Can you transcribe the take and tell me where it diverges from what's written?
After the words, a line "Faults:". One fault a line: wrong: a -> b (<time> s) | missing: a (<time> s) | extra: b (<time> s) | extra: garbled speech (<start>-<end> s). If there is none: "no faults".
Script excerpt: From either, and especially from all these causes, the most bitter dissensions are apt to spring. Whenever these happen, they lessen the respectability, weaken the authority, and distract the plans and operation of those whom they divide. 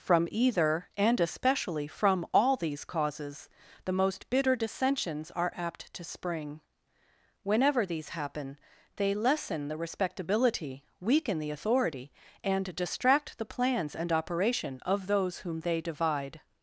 From either, and especially from all these causes, the most bitter dissensions are apt to spring. Whenever these happen, they lessen the respectability, weaken the authority, and distract the plans and operation of those whom they divide.
Faults:
no faults